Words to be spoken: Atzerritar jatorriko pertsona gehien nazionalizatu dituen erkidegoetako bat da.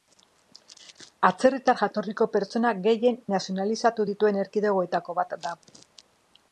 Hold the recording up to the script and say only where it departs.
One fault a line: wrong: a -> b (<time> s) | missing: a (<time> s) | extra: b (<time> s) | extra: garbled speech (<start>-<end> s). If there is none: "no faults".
no faults